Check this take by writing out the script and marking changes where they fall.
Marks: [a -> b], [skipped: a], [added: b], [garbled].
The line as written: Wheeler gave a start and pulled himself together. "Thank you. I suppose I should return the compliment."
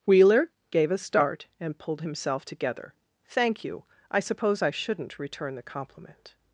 Wheeler gave a start and pulled himself together. "Thank you. I suppose I [should -> shouldn't] return the compliment."